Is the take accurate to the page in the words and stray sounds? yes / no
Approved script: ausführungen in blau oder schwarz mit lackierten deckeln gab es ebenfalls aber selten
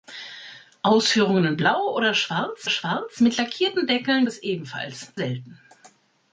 no